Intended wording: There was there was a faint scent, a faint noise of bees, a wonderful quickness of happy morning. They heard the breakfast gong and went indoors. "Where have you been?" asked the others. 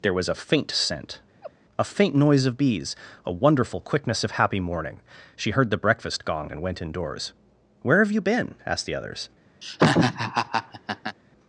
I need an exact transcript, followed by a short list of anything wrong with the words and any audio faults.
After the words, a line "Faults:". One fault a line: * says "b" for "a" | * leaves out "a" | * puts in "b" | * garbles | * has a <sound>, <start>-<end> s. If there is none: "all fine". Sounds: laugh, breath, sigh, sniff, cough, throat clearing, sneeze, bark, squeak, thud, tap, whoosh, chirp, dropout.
There was a faint scent, a faint noise of bees, a wonderful quickness of happy morning. She heard the breakfast gong and went indoors. "Where have you been?" asked the others.
Faults:
* leaves out "there was"
* has a laugh, 1.4-1.5 s
* says "She" for "They"
* has a laugh, 9.6-11.2 s